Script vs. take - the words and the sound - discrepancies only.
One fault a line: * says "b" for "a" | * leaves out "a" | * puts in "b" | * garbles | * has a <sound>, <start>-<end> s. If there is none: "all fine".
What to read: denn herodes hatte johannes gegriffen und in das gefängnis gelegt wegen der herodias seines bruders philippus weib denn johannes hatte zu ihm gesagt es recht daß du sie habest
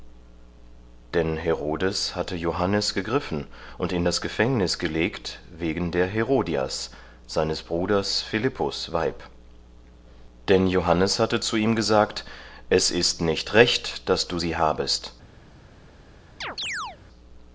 * puts in "ist nicht"
* has a chirp, 16.4-17.0 s